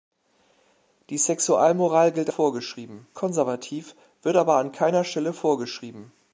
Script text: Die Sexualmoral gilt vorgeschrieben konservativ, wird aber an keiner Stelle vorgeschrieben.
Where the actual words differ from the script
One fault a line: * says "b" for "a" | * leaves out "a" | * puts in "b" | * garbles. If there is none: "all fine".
all fine